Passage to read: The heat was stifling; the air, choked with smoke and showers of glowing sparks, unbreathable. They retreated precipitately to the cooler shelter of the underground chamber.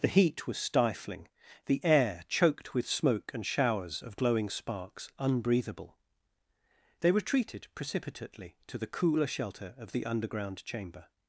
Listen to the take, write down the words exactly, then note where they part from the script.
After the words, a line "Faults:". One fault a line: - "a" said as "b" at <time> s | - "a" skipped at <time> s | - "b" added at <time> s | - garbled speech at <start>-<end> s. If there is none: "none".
The heat was stifling; the air, choked with smoke and showers of glowing sparks, unbreathable. They retreated precipitately to the cooler shelter of the underground chamber.
Faults:
none